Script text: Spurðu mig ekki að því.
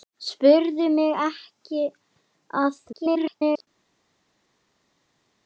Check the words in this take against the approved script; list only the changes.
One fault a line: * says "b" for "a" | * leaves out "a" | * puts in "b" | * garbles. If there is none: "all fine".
* garbles